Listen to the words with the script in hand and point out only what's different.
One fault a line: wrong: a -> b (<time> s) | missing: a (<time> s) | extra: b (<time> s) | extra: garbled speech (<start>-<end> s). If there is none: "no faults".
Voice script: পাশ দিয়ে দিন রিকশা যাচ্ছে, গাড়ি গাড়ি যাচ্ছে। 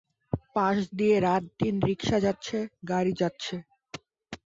extra: রাত (1.3 s)
missing: গাড়ি (3.1 s)